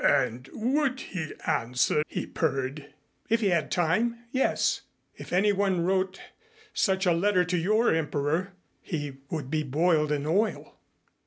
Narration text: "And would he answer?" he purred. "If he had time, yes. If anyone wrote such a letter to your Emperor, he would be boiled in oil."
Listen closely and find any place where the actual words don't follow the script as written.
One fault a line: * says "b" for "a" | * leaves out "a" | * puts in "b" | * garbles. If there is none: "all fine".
all fine